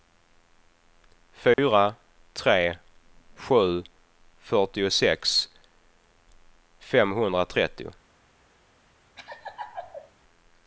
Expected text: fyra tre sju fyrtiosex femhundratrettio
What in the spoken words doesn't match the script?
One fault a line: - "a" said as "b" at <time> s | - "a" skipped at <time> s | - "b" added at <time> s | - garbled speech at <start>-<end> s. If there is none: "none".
none